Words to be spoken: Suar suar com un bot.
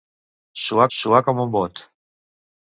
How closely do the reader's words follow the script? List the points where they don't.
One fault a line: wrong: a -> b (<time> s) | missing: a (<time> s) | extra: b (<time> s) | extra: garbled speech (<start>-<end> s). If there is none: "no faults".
no faults